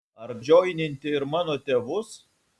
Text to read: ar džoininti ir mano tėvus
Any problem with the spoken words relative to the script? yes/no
no